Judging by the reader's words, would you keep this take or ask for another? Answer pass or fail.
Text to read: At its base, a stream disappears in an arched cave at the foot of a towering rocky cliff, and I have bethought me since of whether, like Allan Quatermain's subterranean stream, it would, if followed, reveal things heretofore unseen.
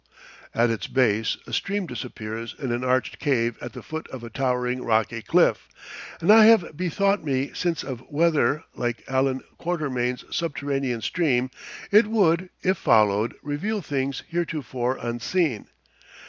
pass